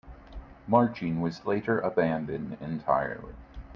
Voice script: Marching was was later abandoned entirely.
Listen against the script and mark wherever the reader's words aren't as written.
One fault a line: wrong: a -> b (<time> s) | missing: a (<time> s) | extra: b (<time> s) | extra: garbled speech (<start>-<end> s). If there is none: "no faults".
missing: was (1.4 s)